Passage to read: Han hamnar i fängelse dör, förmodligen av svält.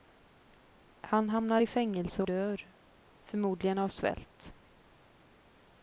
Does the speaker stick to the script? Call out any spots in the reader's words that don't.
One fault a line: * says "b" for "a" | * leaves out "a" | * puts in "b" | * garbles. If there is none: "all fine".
all fine